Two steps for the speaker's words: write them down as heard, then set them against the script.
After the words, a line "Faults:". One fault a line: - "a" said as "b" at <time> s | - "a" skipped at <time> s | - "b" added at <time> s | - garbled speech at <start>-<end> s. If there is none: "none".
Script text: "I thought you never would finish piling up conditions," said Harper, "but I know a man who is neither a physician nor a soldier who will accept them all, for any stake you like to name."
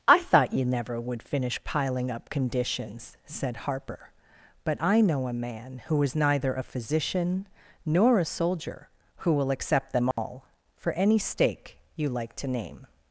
"I thought you never would finish piling up conditions," said Harper, "but I know a man who is neither a physician nor a soldier who will accept them all, for any stake you like to name."
Faults:
none